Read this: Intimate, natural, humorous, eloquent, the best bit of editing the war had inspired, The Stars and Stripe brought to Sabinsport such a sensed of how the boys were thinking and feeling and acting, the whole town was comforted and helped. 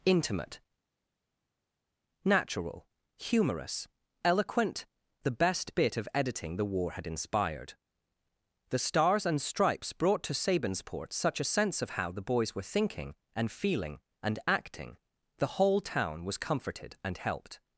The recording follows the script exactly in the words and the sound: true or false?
false